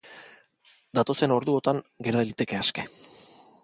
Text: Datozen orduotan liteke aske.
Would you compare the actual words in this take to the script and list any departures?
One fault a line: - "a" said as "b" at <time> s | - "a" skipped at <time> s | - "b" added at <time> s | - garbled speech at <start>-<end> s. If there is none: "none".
- "gera" added at 2.1 s